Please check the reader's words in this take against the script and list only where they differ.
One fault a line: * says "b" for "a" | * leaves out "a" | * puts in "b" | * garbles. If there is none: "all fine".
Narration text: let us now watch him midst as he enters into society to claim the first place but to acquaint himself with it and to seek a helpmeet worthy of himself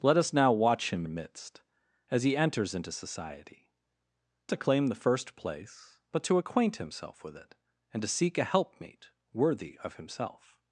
all fine